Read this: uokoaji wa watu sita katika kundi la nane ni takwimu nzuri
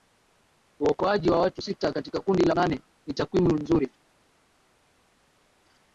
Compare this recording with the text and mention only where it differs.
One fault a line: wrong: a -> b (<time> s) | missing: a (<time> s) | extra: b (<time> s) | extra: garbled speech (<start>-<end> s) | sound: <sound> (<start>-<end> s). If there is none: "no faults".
no faults